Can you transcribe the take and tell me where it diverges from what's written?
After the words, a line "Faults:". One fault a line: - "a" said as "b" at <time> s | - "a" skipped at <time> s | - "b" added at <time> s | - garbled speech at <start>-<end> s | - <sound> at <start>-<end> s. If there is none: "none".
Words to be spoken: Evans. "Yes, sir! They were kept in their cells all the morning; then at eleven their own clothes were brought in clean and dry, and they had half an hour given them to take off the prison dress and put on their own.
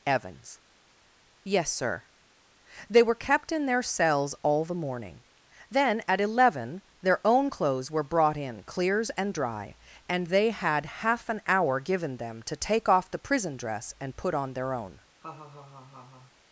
Evans. "Yes, sir! They were kept in their cells all the morning; then at eleven their own clothes were brought in clears and dry, and they had half an hour given them to take off the prison dress and put on their own.
Faults:
- "clean" said as "clears" at 8.6 s
- laugh at 15.2-16.3 s